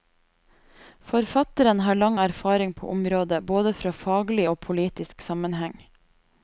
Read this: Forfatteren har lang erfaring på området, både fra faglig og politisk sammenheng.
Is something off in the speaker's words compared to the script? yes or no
no